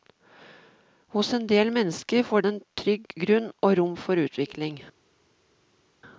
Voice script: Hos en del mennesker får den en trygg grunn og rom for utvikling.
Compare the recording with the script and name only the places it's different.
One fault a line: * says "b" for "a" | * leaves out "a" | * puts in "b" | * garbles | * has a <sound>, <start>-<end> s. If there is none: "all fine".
* leaves out "den"